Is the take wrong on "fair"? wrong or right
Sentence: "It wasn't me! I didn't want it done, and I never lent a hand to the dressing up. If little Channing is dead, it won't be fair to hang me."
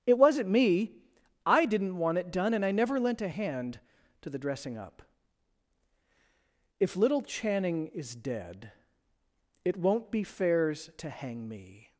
wrong